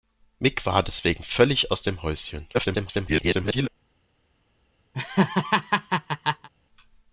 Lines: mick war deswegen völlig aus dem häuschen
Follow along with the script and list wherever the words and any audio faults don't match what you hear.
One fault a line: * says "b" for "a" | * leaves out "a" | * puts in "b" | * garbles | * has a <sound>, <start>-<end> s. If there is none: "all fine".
* garbles
* has a laugh, 4.9-6.5 s